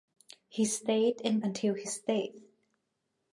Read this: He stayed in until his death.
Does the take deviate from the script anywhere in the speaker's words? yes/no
no